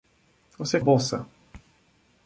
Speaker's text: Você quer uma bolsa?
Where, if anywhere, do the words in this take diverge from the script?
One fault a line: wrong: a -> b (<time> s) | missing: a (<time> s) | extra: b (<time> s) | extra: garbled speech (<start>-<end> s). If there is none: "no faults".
missing: quer uma (0.8 s)